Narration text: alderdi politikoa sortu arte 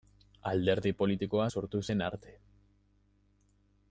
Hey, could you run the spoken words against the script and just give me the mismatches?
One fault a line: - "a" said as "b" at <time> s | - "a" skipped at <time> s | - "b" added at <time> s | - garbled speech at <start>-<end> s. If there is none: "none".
- "zen" added at 1.9 s